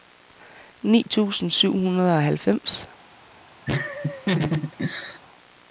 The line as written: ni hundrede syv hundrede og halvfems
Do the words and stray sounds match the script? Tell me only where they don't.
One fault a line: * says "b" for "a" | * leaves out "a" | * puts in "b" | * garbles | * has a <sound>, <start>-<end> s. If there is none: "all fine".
* says "tusind" for "hundrede"
* has a laugh, 3.7-5.2 s